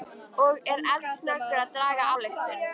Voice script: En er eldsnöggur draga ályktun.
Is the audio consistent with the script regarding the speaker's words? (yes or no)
no